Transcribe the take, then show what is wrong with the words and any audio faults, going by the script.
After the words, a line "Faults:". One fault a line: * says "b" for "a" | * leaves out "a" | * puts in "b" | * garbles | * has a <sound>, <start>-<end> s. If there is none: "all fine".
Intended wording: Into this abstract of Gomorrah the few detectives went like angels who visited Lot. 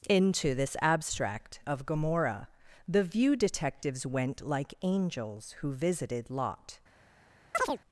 Into this abstract of Gomorrah the view detectives went like angels who visited Lot.
Faults:
* says "view" for "few"
* has a chirp, 7.5-7.8 s